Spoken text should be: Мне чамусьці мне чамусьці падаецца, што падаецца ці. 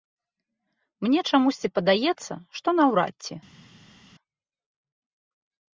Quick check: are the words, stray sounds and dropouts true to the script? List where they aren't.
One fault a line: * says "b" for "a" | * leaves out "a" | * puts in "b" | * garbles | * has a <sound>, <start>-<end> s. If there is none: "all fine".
* leaves out "мне чамусьці"
* says "наўрад" for "падаецца"